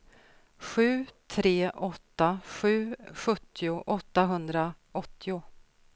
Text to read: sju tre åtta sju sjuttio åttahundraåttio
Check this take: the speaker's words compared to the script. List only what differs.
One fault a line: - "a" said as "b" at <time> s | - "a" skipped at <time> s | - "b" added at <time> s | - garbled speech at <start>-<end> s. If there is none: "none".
none